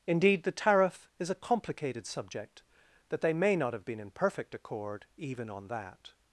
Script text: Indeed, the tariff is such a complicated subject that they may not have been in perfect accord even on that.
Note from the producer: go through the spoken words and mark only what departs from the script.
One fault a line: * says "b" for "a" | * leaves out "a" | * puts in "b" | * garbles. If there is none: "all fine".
* leaves out "such"